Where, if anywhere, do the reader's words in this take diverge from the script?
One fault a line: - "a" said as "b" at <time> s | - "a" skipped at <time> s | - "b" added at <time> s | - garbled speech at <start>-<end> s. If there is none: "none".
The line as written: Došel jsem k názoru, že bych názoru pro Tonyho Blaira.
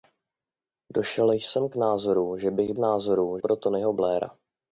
none